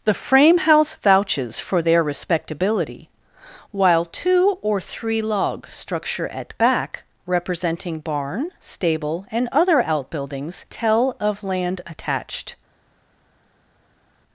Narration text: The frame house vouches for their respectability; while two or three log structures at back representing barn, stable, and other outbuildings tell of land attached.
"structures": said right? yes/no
no